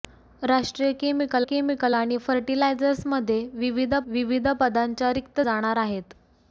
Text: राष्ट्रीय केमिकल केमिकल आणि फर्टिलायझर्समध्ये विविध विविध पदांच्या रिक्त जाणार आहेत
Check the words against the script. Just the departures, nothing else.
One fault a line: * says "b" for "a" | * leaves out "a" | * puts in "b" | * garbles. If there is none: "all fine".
all fine